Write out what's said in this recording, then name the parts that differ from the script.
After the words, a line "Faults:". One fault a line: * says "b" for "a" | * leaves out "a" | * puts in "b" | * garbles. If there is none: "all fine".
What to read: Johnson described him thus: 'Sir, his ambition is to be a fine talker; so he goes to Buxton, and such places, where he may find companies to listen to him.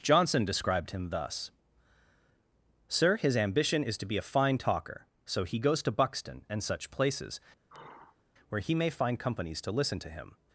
Johnson described him thus: 'Sir, his ambition is to be a fine talker; so he goes to Buxton, and such places, where he may find companies to listen to him.
Faults:
all fine